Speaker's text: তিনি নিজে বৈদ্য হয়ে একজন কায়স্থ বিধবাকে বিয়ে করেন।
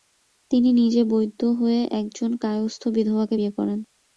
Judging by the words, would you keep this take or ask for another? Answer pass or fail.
pass